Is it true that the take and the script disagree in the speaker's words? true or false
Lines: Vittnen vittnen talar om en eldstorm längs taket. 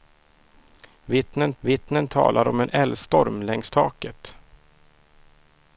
false